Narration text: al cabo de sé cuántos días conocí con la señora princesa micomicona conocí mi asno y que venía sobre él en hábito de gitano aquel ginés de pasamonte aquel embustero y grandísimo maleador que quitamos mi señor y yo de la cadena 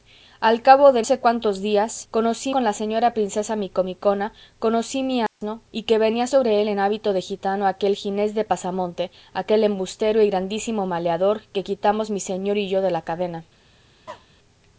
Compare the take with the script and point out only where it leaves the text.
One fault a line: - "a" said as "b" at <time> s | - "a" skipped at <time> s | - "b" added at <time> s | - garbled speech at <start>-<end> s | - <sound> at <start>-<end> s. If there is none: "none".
- dropout at 5.3-5.4 s
- cough at 14.1-14.3 s